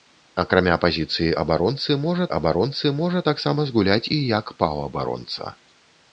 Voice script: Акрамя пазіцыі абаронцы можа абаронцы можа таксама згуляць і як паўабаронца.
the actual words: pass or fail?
pass